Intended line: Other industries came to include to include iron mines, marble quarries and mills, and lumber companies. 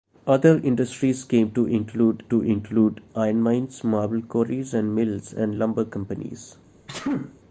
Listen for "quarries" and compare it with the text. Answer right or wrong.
right